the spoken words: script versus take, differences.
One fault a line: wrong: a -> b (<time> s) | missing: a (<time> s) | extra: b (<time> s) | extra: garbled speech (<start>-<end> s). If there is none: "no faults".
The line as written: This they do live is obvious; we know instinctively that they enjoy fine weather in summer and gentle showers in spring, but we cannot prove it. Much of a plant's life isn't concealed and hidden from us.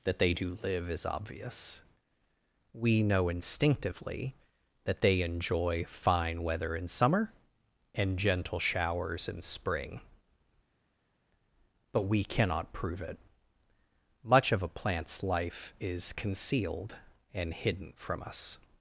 wrong: This -> That (0.0 s)
wrong: isn't -> is (15.8 s)